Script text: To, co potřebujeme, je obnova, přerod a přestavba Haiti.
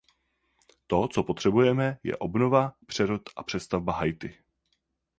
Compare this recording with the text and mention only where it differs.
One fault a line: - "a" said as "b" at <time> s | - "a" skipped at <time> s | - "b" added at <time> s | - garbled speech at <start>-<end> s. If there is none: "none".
none